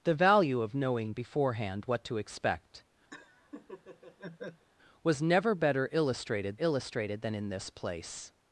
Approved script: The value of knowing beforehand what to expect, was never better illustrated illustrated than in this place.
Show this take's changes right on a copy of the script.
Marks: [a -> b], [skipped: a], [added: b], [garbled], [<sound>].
The value of knowing beforehand what to expect, [laugh] was never better illustrated illustrated than in this place.